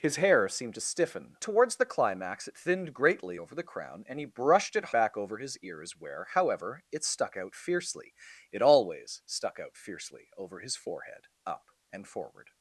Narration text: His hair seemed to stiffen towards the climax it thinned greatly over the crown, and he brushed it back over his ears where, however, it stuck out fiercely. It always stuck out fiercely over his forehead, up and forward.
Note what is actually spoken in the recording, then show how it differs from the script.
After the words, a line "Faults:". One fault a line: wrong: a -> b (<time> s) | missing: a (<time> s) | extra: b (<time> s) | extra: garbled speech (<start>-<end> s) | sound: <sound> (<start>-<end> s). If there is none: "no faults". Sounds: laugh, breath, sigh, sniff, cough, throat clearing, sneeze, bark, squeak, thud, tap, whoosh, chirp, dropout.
His hair seemed to stiffen towards the climax it thinned greatly over the crown, and he brushed it back over his ears where, however, it stuck out fiercely. It always stuck out fiercely over his forehead, up and forward.
Faults:
no faults